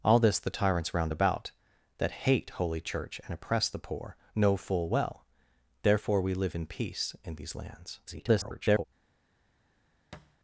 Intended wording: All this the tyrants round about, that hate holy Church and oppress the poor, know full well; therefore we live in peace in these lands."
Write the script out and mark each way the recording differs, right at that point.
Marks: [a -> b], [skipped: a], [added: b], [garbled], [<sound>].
All this the tyrants round about, that hate holy Church and oppress the poor, know full well; therefore we live in peace in these lands." [garbled] [thud]